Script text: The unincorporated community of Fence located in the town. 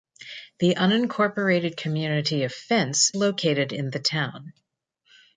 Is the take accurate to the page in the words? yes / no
yes